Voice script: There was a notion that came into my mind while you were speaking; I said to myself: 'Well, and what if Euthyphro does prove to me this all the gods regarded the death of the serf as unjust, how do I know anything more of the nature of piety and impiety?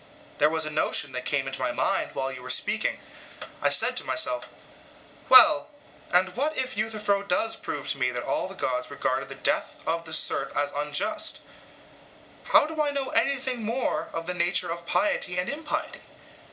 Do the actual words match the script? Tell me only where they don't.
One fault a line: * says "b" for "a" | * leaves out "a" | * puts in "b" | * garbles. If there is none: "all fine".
* says "that" for "this"